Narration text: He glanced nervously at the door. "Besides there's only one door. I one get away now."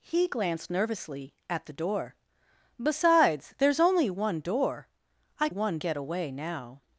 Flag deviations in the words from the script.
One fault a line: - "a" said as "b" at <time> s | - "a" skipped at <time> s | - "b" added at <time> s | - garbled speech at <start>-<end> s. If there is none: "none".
none